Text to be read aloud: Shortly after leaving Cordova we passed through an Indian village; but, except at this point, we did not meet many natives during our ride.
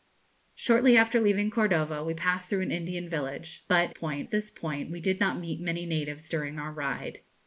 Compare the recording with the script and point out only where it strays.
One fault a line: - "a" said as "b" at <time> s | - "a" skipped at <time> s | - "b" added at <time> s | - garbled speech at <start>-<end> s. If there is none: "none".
- "except" said as "point" at 3.9 s